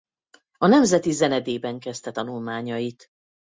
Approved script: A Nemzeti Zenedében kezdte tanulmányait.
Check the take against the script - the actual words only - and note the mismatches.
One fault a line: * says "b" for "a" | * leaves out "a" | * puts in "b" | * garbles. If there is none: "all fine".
all fine